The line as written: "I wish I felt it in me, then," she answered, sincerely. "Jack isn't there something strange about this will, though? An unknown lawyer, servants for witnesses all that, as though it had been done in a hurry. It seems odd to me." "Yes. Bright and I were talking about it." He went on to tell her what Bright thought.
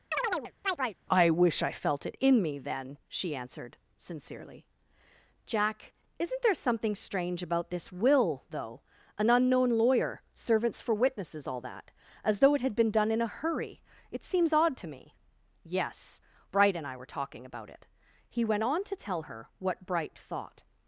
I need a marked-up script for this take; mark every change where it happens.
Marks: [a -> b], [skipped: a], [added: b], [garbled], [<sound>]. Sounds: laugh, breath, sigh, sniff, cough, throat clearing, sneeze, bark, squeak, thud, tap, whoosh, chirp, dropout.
[chirp] "I wish I felt it in me, then," she answered, sincerely. "Jack isn't there something strange about this will, though? An unknown lawyer, servants for witnesses all that, as though it had been done in a hurry. It seems odd to me." "Yes. Bright and I were talking about it." He went on to tell her what Bright thought.